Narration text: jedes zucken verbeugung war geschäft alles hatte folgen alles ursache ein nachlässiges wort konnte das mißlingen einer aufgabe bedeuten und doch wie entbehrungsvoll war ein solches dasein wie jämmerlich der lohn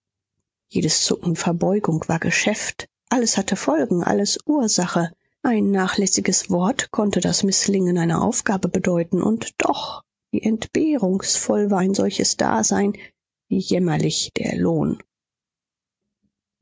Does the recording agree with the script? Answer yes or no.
yes